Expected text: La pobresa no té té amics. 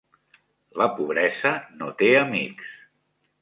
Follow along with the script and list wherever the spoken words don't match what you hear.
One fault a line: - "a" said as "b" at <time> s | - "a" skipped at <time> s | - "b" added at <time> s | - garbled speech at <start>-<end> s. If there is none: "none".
- "té" skipped at 2.1 s